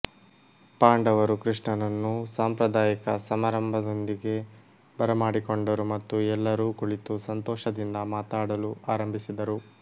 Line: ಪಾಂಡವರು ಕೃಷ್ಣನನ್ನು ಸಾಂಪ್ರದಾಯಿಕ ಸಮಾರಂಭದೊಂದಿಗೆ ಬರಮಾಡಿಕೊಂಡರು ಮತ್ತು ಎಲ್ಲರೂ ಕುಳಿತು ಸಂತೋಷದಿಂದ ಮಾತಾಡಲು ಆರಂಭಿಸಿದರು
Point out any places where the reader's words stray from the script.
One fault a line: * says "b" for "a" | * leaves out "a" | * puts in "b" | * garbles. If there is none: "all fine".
all fine